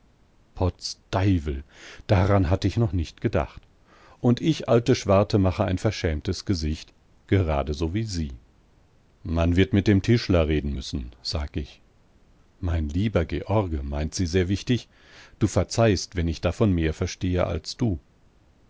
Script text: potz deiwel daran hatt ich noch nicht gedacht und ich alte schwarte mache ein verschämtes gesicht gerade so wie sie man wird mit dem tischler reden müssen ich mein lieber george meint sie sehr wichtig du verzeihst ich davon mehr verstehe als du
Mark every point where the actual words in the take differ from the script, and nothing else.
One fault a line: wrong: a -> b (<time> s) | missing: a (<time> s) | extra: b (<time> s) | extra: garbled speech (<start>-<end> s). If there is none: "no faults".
extra: sag (11.2 s)
extra: wenn (16.1 s)